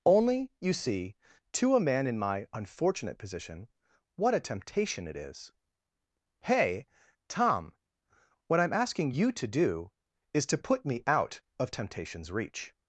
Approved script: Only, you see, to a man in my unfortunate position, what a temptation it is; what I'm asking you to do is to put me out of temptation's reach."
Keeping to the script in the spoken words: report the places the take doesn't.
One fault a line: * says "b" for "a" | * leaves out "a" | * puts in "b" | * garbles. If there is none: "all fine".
* puts in "hey tom"